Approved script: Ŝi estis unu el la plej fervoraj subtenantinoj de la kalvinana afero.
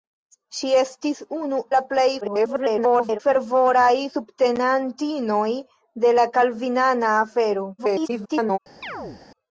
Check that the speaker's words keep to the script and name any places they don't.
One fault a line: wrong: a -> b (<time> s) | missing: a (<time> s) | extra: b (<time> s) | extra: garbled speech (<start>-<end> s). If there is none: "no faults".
missing: el (1.6 s)
extra: garbled speech (2.2-3.2 s)
extra: garbled speech (7.8-8.6 s)